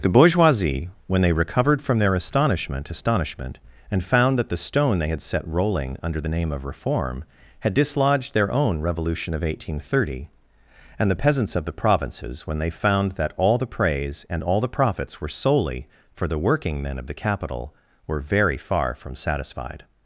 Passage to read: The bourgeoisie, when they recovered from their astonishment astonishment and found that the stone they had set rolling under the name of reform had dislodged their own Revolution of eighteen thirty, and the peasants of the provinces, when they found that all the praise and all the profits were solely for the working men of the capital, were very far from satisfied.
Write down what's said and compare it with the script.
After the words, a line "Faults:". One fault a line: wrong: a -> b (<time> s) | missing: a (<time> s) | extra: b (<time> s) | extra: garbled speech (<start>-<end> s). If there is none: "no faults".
The bourgeoisie, when they recovered from their astonishment astonishment and found that the stone they had set rolling under the name of reform had dislodged their own Revolution of eighteen thirty, and the peasants of the provinces, when they found that all the praise and all the profits were solely for the working men of the capital, were very far from satisfied.
Faults:
no faults